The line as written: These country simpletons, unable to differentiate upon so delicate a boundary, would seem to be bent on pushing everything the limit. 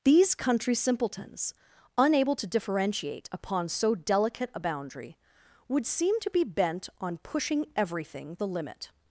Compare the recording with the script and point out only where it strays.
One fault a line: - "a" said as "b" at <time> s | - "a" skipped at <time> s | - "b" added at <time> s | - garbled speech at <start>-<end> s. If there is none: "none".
none